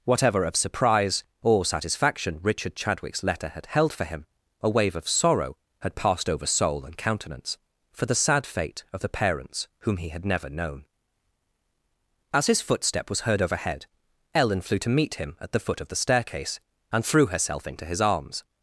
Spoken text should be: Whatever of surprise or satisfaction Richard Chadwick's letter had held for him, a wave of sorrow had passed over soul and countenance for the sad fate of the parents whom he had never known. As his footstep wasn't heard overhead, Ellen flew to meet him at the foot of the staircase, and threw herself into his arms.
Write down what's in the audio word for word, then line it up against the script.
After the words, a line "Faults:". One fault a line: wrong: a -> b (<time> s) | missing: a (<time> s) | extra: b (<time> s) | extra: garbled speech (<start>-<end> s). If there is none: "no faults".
Whatever of surprise or satisfaction Richard Chadwick's letter had held for him, a wave of sorrow had passed over soul and countenance for the sad fate of the parents whom he had never known. As his footstep was heard overhead, Ellen flew to meet him at the foot of the staircase, and threw herself into his arms.
Faults:
wrong: wasn't -> was (13.1 s)